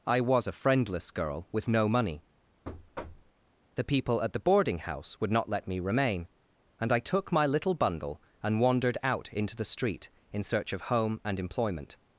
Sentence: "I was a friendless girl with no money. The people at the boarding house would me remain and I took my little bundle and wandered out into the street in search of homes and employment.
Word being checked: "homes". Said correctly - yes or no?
no